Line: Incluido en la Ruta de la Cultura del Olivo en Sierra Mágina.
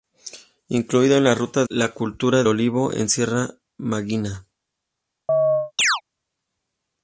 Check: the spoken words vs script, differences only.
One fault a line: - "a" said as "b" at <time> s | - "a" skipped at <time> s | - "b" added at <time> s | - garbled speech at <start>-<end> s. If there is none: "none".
- "de" skipped at 1.6 s
- "del" skipped at 2.4 s